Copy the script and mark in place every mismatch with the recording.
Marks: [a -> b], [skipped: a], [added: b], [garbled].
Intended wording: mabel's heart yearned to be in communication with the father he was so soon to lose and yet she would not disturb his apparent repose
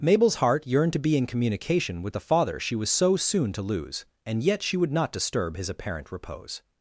mabel's heart yearned to be in communication with the father [he -> she] was so soon to lose and yet she would not disturb his apparent repose